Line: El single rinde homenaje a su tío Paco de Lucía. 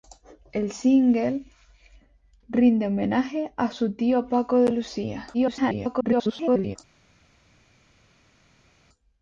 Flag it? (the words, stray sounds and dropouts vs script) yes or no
yes